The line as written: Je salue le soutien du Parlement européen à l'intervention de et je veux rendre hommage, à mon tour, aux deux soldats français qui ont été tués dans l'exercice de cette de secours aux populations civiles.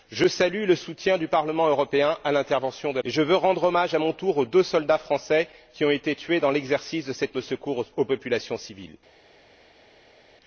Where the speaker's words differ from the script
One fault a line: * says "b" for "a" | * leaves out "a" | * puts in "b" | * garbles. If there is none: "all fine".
all fine